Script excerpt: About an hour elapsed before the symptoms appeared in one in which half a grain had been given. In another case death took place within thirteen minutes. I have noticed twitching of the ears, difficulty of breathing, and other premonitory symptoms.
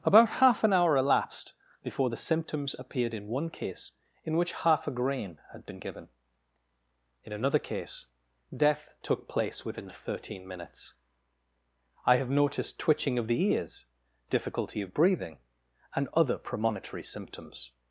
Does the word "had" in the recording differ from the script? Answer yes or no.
no